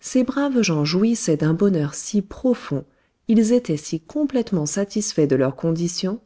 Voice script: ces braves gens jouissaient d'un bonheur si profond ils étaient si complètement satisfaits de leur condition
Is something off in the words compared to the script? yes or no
no